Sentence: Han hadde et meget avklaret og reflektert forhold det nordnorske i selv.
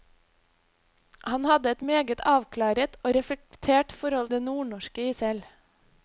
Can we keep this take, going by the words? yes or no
yes